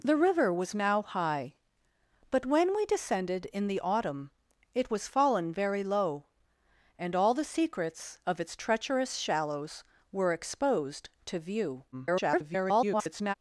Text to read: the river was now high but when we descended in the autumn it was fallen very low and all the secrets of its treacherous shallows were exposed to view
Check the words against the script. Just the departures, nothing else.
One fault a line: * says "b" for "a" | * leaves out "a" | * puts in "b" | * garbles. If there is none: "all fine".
* garbles